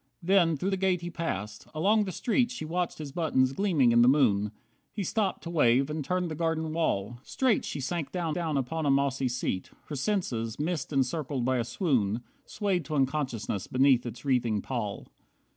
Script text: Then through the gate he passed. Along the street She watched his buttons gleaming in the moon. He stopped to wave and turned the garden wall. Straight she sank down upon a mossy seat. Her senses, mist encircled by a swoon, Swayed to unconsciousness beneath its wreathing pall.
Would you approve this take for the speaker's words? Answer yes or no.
no